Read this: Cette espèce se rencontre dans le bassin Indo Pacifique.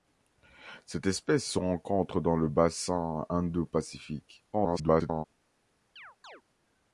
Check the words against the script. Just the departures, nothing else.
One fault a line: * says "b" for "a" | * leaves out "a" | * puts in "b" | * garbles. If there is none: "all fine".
* garbles